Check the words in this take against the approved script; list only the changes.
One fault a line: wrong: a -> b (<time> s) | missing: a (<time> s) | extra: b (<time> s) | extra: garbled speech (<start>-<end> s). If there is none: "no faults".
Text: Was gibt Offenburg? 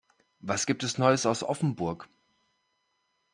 extra: es neues aus (0.8 s)